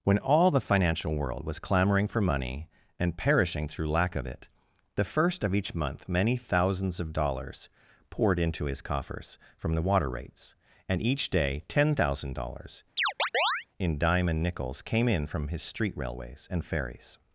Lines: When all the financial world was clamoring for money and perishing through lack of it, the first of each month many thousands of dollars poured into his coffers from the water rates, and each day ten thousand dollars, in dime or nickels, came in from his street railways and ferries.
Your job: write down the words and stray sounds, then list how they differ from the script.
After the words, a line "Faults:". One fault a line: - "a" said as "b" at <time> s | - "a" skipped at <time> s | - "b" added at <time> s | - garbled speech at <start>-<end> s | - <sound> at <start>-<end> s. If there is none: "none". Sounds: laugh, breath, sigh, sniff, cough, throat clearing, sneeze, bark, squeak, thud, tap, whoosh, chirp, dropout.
When all the financial world was clamoring for money and perishing through lack of it, the first of each month many thousands of dollars poured into his coffers from the water rates, and each day ten thousand dollars, in dime and nickels, came in from his street railways and ferries.
Faults:
- chirp at 13.0-13.7 s
- "or" said as "and" at 14.3 s